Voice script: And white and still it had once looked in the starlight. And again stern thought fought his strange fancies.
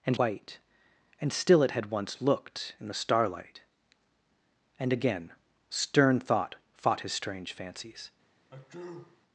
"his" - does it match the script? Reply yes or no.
yes